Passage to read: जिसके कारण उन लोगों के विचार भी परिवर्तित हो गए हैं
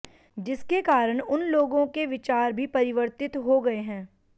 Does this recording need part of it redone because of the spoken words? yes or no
no